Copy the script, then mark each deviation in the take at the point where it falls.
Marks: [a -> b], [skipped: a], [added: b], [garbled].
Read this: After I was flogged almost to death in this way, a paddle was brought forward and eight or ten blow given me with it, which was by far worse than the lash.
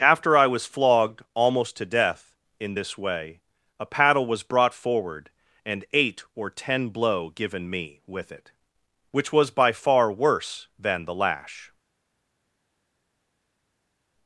After I was flogged almost to death in this way, a paddle was brought forward and eight or ten blow given me with it, which was by far worse than the lash.